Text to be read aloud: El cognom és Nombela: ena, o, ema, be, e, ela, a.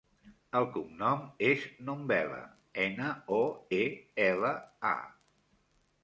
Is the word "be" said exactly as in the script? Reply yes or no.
no